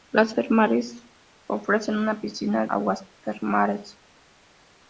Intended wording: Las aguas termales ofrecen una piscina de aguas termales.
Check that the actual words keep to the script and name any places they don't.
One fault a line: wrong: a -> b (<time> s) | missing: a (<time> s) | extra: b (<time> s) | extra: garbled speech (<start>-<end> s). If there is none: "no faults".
missing: aguas (0.3 s)
missing: de (2.7 s)